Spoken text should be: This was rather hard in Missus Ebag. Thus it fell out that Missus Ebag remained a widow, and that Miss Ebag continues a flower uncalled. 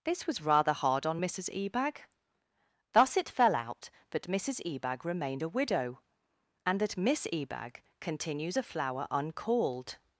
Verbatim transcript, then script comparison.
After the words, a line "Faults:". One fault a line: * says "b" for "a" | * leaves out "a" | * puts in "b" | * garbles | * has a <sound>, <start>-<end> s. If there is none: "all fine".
This was rather hard on Missus Ebag. Thus it fell out that Missus Ebag remained a widow, and that Miss Ebag continues a flower uncalled.
Faults:
* says "on" for "in"